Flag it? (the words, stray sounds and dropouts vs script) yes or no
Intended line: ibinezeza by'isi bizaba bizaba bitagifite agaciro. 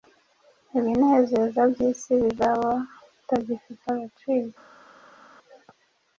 yes